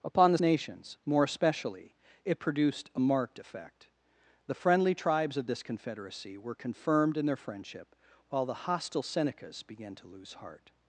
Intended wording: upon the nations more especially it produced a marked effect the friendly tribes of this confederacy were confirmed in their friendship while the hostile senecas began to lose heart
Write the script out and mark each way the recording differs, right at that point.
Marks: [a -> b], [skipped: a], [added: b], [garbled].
upon the nations more especially it produced a marked effect the friendly tribes of this confederacy were confirmed in their friendship while the hostile senecas began to lose heart